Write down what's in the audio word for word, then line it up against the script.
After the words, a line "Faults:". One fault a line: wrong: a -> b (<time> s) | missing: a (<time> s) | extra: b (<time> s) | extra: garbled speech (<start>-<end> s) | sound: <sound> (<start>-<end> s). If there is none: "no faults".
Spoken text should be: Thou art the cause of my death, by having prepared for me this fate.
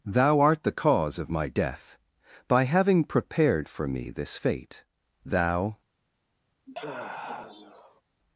Thou art the cause of my death, by having prepared for me this fate. Thou
Faults:
extra: Thou (5.2 s)
sound: sigh (6.7-8.0 s)